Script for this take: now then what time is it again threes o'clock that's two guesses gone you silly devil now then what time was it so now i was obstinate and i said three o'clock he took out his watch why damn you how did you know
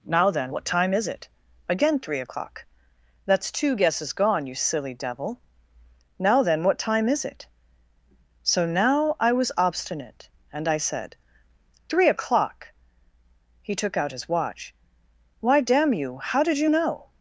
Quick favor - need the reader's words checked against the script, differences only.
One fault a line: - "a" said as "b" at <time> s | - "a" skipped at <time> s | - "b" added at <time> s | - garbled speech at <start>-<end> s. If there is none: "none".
- "threes" said as "three" at 2.0 s
- "was" said as "is" at 7.1 s